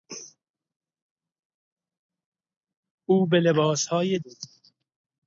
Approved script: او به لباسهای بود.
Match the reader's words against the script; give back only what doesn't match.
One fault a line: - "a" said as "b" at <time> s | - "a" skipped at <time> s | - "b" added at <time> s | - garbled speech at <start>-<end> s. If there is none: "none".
none